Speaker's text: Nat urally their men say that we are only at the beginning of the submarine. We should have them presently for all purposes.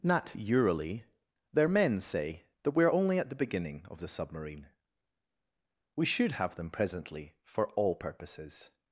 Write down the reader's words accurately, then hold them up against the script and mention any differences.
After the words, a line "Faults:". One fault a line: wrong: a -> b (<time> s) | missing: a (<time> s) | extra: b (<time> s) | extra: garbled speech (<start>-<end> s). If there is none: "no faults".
Nat urally their men say that we are only at the beginning of the submarine. We should have them presently for all purposes.
Faults:
no faults